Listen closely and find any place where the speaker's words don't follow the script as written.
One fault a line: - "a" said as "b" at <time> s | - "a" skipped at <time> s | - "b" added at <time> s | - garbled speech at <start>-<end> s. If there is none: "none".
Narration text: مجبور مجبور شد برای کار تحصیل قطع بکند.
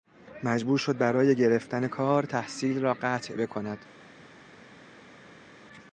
- "مجبور" skipped at 0.8 s
- "گرفتن" added at 1.4 s
- "را" added at 2.8 s